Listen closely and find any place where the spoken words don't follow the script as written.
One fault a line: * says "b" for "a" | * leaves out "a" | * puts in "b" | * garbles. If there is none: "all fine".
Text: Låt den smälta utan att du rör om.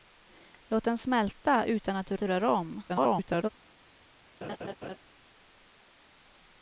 * puts in "du"
* garbles